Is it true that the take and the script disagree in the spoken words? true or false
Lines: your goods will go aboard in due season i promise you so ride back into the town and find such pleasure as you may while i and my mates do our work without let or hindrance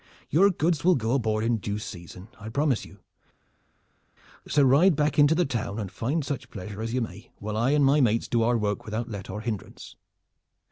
false